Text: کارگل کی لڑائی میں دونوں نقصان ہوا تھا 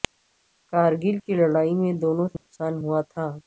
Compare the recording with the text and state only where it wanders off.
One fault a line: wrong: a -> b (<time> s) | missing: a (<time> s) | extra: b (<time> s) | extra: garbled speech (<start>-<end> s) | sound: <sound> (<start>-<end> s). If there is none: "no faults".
sound: dropout (2.4-2.5 s)